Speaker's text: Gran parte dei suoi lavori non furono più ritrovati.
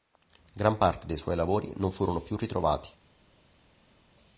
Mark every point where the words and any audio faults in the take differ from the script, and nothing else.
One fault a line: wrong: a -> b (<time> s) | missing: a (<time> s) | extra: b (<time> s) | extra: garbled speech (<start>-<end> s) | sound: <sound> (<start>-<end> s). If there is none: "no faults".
no faults